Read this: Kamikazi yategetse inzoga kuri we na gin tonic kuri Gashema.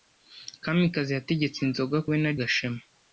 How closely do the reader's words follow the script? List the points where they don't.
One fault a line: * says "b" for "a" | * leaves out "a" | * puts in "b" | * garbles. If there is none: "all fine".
* leaves out "kuri"
* leaves out "gin tonic kuri"